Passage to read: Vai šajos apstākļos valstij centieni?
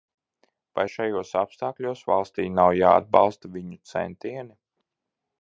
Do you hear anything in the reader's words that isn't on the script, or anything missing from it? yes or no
yes